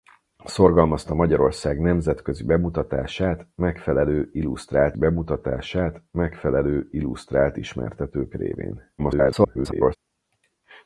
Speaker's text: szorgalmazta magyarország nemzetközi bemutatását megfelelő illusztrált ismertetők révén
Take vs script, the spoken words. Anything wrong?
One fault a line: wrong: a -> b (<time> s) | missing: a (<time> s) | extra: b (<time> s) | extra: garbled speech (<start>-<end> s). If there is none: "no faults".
extra: bemutatását megfelelő illusztrált (5.0 s)
extra: garbled speech (9.0-10.0 s)